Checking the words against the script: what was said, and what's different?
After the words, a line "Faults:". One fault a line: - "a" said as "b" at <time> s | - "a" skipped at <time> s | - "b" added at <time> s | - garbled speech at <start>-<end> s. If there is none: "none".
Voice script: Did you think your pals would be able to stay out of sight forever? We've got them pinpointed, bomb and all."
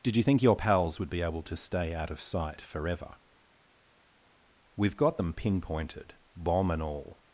Did you think your pals would be able to stay out of sight forever? We've got them pinpointed, bomb and all."
Faults:
none